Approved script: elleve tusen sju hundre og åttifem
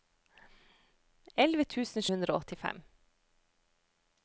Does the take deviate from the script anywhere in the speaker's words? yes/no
yes